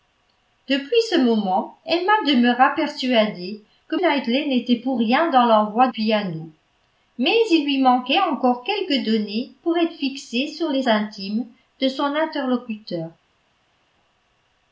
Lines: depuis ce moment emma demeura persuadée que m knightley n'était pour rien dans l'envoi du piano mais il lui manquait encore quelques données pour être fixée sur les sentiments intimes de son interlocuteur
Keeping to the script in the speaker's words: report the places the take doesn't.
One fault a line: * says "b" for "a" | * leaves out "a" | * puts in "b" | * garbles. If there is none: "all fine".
* leaves out "m"
* leaves out "du"
* leaves out "sentiments"